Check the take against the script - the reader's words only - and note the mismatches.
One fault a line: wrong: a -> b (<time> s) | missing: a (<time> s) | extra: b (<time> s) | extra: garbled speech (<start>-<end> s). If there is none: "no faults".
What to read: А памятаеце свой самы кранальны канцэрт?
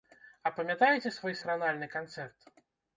missing: самы (1.4 s)